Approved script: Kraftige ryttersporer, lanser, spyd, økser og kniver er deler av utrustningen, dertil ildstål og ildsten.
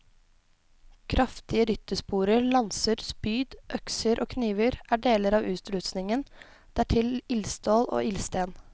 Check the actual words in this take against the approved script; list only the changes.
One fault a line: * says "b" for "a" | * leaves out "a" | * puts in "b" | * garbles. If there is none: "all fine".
all fine